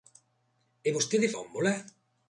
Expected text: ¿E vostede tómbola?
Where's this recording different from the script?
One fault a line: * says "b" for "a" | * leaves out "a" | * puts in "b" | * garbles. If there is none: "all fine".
all fine